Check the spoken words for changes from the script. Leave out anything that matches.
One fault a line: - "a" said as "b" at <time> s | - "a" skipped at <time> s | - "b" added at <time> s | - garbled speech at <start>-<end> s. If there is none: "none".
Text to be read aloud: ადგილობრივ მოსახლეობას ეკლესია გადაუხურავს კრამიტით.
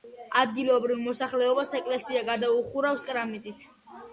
none